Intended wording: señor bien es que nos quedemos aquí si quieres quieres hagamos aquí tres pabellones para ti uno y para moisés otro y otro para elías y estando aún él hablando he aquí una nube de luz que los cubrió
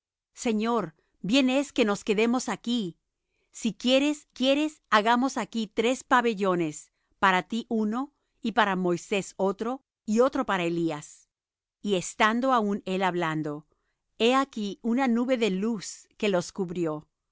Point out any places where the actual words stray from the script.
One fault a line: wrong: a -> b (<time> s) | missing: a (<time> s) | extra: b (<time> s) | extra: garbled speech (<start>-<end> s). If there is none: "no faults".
no faults